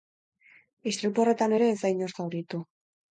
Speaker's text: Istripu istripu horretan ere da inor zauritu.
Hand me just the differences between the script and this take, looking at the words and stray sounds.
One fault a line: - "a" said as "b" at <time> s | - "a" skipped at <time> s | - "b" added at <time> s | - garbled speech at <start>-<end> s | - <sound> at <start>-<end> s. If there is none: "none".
- "istripu" skipped at 1.2 s
- "ez" added at 1.7 s